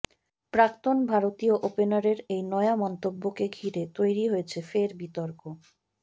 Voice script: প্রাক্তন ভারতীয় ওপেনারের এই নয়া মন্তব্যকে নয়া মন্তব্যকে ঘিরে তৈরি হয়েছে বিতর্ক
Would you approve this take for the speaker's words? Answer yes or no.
no